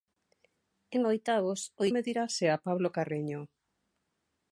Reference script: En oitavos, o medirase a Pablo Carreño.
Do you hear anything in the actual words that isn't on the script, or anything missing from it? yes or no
no